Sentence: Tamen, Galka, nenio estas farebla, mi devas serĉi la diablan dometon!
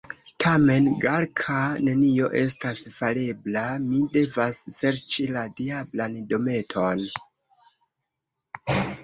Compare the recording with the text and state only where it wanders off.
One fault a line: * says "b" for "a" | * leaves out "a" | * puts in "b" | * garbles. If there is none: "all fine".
all fine